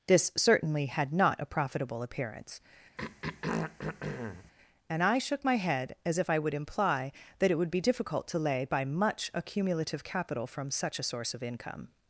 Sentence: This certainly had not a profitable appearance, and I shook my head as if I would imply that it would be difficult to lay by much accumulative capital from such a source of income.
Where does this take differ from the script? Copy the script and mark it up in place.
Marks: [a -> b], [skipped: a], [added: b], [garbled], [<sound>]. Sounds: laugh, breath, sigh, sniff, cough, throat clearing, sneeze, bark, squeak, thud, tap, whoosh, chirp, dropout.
This certainly had not a profitable appearance, [throat clearing] and I shook my head as if I would imply that it would be difficult to lay by much accumulative capital from such a source of income.